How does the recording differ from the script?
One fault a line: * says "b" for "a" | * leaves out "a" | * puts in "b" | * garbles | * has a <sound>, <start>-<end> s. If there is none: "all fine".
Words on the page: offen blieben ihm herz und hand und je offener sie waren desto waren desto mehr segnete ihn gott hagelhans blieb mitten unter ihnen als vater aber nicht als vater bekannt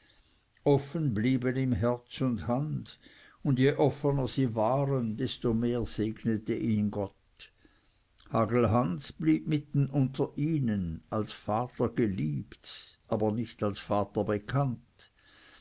* leaves out "waren desto"
* puts in "geliebt"